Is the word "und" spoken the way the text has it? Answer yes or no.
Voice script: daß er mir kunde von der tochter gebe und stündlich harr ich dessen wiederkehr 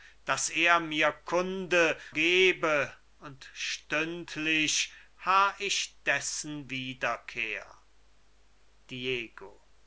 yes